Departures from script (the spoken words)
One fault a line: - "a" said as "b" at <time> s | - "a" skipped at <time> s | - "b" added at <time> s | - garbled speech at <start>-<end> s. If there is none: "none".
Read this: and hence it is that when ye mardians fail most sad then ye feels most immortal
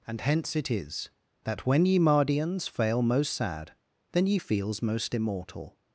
none